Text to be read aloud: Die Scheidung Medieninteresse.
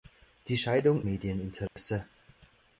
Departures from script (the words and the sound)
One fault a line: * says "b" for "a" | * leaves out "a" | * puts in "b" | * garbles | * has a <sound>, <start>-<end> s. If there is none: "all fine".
* has a dropout, 1.7-1.8 s